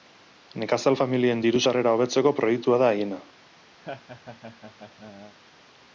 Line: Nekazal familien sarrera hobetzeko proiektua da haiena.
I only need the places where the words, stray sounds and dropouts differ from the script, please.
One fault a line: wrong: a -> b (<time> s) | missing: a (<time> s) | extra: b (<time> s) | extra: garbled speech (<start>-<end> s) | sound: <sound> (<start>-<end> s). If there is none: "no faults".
extra: diru (1.5 s)
sound: laugh (3.8-5.4 s)